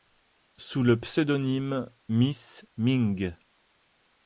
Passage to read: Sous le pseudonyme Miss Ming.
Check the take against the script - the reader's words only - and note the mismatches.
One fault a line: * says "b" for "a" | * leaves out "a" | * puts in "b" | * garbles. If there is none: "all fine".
all fine